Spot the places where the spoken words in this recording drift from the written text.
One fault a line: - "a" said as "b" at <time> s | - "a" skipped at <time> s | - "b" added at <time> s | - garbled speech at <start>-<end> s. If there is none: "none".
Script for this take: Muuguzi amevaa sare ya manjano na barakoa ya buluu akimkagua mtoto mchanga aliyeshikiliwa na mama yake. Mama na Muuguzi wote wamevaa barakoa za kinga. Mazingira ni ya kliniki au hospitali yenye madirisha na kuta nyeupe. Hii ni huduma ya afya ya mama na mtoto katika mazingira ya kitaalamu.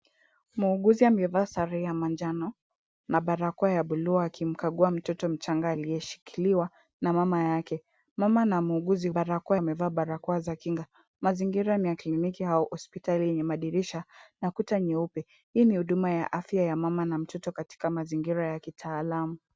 - "wote" said as "barakoa" at 9.1 s